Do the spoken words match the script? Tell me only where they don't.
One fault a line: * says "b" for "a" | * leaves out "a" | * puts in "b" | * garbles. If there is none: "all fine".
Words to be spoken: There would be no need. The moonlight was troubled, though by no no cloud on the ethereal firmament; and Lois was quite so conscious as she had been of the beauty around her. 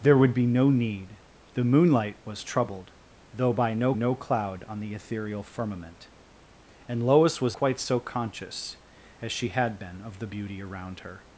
all fine